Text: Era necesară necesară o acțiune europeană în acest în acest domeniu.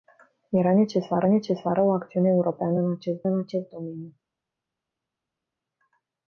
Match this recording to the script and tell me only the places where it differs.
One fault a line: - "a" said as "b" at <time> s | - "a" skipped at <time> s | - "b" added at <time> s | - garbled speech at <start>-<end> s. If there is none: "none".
none